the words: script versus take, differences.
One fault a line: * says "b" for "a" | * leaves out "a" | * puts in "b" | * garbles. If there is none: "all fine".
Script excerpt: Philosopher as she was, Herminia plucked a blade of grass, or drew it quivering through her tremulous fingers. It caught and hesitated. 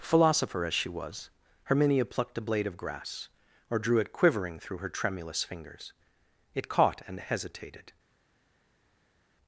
all fine